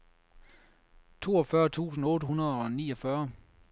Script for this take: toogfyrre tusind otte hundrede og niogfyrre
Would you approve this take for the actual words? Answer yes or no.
yes